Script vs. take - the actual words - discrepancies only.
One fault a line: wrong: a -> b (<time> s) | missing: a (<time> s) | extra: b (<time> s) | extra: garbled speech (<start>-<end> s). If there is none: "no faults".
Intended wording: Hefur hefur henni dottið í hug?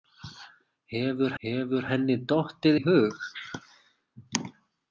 no faults